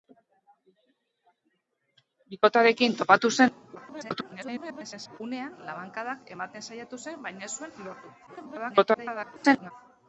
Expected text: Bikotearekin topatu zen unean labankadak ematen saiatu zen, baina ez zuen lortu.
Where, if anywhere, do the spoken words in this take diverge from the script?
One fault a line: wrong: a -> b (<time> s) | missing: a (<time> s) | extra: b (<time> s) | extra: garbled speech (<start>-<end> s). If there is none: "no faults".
extra: garbled speech (3.7-5.2 s)
extra: garbled speech (8.3-9.7 s)